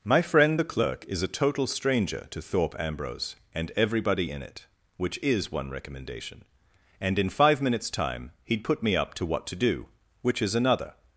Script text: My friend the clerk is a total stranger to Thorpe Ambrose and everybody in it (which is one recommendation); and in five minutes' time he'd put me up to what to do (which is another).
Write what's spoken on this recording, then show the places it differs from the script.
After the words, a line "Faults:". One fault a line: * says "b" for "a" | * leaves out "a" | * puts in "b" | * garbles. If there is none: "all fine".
My friend the clerk is a total stranger to Thorpe Ambrose and everybody in it (which is one recommendation); and in five minutes' time he'd put me up to what to do (which is another).
Faults:
all fine